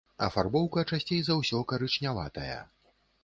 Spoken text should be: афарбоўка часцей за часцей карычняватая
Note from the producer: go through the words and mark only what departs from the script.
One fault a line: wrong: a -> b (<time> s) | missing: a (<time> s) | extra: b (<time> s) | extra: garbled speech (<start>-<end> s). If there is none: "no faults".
wrong: часцей -> ўсё (1.4 s)